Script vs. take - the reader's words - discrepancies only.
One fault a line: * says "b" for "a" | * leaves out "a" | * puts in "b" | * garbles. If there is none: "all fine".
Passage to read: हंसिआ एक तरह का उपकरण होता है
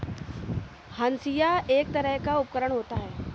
all fine